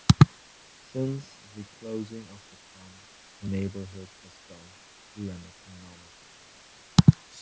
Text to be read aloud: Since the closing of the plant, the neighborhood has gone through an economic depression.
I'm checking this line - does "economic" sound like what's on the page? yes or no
yes